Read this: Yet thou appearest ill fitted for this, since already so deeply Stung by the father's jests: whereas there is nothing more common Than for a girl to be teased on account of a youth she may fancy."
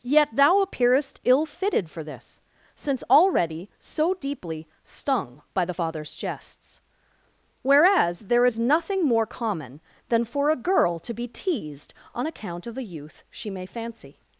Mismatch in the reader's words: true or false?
false